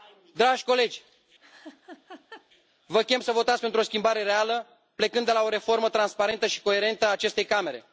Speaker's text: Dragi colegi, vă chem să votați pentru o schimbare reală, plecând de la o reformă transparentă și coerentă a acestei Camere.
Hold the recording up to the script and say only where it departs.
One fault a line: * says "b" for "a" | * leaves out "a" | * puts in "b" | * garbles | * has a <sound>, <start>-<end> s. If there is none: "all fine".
* has a laugh, 1.4-2.5 s